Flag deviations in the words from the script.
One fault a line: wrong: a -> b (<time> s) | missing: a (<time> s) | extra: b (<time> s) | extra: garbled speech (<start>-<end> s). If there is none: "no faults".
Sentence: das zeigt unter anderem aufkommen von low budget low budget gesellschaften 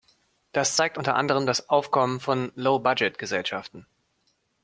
extra: das (1.5 s)
missing: low budget (3.2 s)